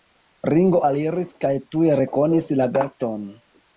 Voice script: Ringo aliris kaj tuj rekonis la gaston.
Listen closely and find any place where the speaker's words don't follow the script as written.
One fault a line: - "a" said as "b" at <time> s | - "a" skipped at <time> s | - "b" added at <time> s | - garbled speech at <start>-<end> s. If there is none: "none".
none